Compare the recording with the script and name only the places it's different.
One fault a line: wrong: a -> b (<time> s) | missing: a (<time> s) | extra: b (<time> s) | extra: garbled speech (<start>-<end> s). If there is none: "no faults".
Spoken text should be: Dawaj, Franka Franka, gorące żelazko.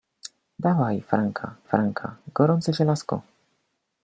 no faults